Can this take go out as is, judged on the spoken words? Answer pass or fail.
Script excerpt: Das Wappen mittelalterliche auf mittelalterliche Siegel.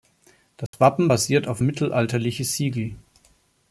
fail